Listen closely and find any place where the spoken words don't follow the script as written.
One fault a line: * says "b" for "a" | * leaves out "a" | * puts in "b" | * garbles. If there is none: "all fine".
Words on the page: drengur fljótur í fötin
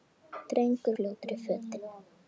all fine